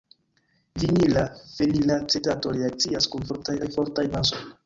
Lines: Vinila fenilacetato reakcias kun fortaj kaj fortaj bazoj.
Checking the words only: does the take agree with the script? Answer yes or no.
yes